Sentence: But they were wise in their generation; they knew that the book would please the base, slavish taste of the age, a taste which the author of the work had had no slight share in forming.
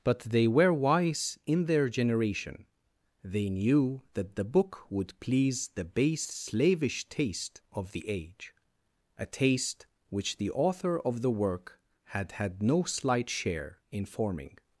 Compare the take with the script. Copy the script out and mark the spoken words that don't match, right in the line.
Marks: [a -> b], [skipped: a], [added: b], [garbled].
But they were wise in their generation; they knew that the book would please the base, slavish taste of the age, a taste which the author of the work had had no slight share in forming.